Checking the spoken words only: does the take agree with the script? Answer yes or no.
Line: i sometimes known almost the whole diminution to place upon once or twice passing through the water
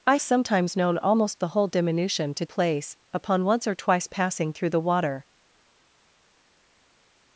yes